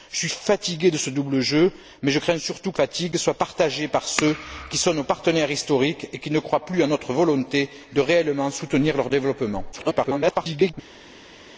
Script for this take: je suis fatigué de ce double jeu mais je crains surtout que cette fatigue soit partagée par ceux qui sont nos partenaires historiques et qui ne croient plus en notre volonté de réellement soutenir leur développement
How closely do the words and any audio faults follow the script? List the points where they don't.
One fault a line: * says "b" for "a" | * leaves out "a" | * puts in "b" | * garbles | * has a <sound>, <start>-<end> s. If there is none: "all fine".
* leaves out "cette"
* garbles